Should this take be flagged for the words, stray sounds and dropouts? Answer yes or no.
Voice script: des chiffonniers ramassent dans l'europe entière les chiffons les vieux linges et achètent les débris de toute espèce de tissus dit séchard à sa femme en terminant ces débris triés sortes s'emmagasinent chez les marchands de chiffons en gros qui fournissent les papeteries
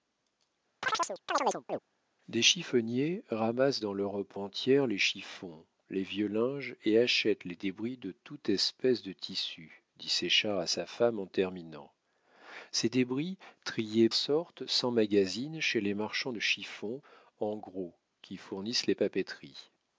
yes